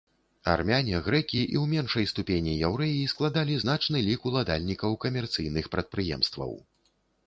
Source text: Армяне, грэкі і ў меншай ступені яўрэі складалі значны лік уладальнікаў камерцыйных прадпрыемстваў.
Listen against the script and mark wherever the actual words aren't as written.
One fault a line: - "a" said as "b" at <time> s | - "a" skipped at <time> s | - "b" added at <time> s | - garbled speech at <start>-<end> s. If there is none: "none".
none